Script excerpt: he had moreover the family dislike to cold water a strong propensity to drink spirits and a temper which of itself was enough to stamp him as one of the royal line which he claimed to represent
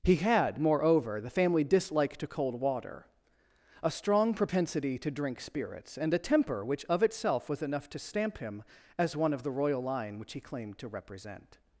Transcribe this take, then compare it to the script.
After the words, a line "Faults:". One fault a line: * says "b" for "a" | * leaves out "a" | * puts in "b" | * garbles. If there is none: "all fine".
he had moreover the family dislike to cold water a strong propensity to drink spirits and a temper which of itself was enough to stamp him as one of the royal line which he claimed to represent
Faults:
all fine